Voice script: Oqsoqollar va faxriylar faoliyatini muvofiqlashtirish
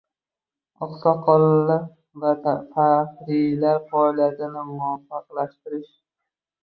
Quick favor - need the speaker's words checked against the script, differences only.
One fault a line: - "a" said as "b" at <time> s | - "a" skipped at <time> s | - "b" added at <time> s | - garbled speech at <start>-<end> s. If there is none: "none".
none